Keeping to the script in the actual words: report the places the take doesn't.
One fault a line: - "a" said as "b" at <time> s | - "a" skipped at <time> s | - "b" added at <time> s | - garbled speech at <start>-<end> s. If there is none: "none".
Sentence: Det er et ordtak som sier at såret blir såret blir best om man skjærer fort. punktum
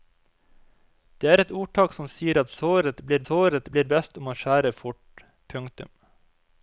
none